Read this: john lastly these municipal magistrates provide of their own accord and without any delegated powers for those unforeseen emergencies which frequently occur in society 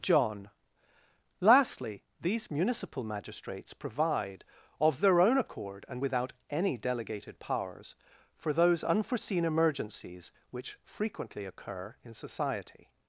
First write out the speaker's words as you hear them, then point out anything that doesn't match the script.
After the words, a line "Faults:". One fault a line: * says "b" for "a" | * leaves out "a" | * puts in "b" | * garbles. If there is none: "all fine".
john lastly these municipal magistrates provide of their own accord and without any delegated powers for those unforeseen emergencies which frequently occur in society
Faults:
all fine